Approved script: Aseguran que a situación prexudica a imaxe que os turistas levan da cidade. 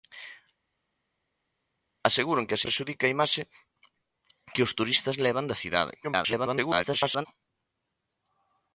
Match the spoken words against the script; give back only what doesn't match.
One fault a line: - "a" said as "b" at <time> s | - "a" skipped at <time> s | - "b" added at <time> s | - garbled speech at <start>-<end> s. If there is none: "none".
- "situación" skipped at 2.6 s
- garbled speech at 6.0-7.3 s